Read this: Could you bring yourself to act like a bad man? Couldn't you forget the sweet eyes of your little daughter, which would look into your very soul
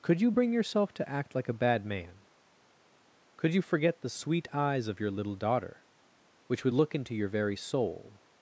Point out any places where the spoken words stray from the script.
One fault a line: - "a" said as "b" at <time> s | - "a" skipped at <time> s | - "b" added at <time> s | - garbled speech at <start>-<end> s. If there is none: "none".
- "Couldn't" said as "Could" at 3.4 s